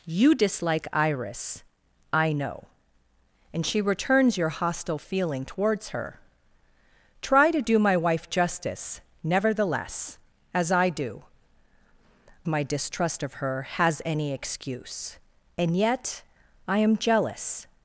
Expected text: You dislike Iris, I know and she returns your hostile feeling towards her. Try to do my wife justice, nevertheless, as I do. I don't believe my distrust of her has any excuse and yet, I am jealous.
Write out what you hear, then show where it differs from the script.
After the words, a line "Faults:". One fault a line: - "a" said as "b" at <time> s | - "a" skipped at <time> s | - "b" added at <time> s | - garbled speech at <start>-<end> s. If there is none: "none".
You dislike Iris, I know and she returns your hostile feeling towards her. Try to do my wife justice, nevertheless, as I do. my distrust of her has any excuse and yet, I am jealous.
Faults:
- "I don't believe" skipped at 11.2 s